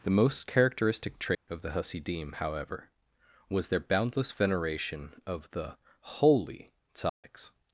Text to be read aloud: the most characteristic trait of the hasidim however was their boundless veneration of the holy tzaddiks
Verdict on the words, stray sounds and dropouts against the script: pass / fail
fail